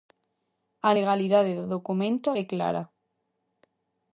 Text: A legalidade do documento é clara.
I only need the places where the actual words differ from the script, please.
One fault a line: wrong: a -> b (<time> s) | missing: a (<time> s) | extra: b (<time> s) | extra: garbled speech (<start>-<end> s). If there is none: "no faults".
no faults